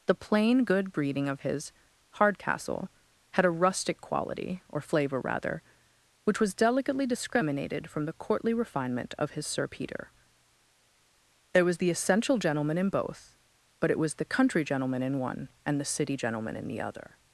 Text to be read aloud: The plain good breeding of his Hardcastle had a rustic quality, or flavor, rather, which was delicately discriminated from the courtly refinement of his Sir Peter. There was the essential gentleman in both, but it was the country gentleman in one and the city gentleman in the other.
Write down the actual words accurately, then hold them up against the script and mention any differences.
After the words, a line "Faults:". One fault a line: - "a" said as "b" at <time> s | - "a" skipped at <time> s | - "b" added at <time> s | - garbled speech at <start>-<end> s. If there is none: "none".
The plain good breeding of his Hardcastle had a rustic quality, or flavor, rather, which was delicately discriminated from the courtly refinement of his Sir Peter. There was the essential gentleman in both, but it was the country gentleman in one and the city gentleman in the other.
Faults:
none